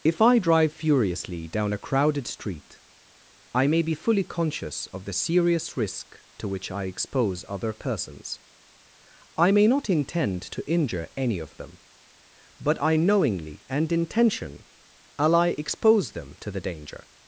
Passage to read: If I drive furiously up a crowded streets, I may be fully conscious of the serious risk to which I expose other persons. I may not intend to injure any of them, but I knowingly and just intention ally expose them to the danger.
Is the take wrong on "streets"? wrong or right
wrong